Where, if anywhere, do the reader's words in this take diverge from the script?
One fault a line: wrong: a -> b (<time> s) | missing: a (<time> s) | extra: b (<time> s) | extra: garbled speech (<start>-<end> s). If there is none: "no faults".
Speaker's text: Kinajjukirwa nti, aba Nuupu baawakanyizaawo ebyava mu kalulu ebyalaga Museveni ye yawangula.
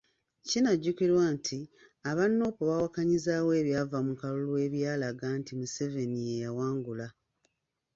extra: nti (5.4 s)